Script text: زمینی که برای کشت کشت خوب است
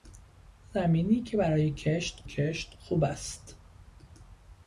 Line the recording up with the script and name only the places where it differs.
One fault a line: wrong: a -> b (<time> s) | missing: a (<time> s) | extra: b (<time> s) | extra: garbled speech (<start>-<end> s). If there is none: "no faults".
no faults